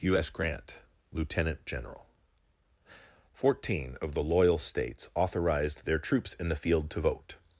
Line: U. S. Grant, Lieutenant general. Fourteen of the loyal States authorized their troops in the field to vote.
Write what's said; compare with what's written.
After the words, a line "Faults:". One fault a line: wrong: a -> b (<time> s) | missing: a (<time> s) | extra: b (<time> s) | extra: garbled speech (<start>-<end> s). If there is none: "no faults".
U. S. Grant, Lieutenant general. Fourteen of the loyal States authorized their troops in the field to vote.
Faults:
no faults